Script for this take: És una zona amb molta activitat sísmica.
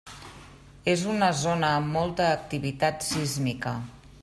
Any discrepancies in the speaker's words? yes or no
no